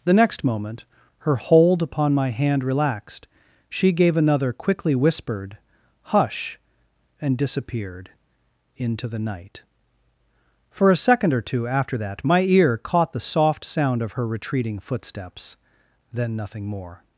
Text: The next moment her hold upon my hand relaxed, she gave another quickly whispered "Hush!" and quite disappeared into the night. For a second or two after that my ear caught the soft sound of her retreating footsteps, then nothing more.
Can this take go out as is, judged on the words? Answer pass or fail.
fail